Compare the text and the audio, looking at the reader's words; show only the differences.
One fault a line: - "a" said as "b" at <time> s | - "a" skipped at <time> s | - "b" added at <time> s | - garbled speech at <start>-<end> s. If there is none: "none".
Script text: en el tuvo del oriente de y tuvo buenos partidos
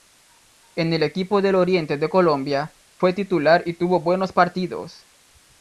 - "tuvo" said as "equipo" at 1.0 s
- "colombia fue titular" added at 2.1 s